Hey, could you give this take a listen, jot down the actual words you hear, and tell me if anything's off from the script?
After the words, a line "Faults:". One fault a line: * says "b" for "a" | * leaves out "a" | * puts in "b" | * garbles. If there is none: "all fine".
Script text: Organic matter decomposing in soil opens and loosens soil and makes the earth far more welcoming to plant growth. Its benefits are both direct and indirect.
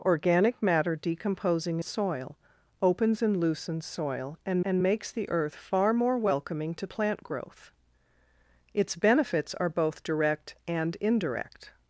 Organic matter decomposing soil opens and loosens soil and and makes the earth far more welcoming to plant growth. Its benefits are both direct and indirect.
Faults:
* leaves out "in"
* puts in "and"